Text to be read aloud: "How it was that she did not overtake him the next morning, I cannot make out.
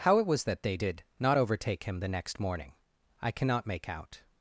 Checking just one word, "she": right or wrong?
wrong